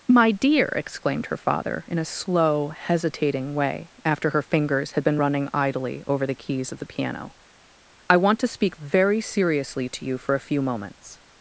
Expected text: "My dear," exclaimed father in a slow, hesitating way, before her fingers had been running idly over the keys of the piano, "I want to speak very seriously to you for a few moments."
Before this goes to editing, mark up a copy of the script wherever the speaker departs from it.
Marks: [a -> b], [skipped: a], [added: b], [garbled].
"My dear," exclaimed [added: her] father in a slow, hesitating way, [before -> after] her fingers had been running idly over the keys of the piano, "I want to speak very seriously to you for a few moments."